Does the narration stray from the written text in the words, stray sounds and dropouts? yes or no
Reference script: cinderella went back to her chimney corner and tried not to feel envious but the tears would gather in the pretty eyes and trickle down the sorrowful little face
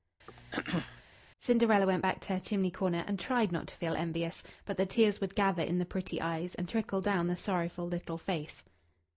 yes